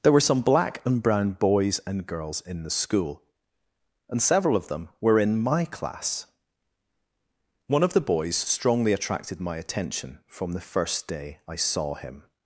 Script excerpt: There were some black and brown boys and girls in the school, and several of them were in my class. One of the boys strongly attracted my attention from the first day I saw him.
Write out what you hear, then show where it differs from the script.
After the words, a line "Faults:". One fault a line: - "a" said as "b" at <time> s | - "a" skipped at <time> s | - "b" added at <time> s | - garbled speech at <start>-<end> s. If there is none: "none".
There were some black and brown boys and girls in the school, and several of them were in my class. One of the boys strongly attracted my attention from the first day I saw him.
Faults:
none